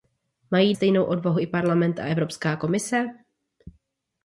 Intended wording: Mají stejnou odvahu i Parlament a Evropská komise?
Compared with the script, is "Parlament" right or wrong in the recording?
right